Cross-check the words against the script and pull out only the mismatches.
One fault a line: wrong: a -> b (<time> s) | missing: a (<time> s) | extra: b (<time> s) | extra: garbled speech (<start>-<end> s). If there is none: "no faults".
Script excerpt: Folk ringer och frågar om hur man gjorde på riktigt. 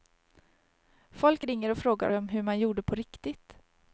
no faults